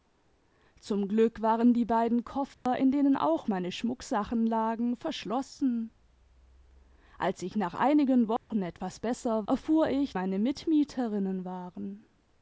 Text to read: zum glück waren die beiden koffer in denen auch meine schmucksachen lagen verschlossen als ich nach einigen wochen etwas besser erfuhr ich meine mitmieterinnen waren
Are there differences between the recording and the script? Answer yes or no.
no